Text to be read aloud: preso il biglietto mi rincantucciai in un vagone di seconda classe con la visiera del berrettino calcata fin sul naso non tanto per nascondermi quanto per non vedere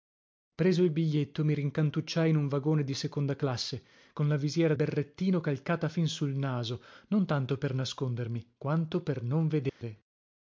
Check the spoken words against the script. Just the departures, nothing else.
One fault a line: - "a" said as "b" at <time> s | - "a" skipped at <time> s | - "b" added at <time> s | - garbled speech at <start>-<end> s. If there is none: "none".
- "del" skipped at 4.7 s